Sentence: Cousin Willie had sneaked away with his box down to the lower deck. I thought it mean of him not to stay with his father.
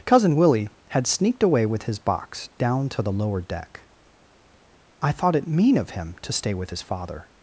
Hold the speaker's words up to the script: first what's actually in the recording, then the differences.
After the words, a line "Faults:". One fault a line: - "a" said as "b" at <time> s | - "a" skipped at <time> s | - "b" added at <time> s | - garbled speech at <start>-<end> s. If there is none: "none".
Cousin Willie had sneaked away with his box down to the lower deck. I thought it mean of him to stay with his father.
Faults:
- "not" skipped at 6.2 s